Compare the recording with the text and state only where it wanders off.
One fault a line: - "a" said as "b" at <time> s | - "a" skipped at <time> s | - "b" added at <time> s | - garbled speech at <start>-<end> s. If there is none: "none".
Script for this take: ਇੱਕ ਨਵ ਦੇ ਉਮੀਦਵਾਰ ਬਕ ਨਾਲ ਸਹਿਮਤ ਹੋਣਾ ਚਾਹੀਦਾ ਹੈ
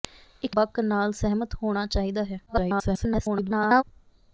- "ਨਵ ਦੇ ਉਮੀਦਵਾਰ" skipped at 0.6 s
- garbled speech at 2.5-3.8 s